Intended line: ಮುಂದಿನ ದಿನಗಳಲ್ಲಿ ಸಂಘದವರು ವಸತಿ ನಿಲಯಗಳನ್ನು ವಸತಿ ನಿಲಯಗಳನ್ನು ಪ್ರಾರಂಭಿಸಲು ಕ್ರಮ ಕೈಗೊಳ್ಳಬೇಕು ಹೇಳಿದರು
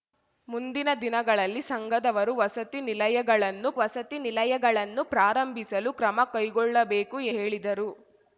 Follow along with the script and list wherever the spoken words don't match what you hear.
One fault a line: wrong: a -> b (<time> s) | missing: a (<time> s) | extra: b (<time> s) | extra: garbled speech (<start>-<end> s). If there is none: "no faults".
no faults